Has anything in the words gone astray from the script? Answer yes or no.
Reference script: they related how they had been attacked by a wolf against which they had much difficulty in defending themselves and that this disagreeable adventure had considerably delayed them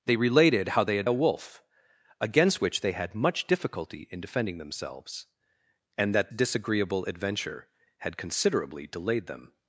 yes